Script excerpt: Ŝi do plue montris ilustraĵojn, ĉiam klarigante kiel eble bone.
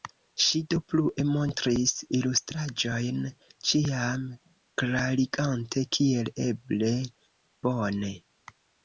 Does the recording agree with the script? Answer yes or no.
yes